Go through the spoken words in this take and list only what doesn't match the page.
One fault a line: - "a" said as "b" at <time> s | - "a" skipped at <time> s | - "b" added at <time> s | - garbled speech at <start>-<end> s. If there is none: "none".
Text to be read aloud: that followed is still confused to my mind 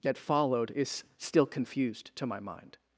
none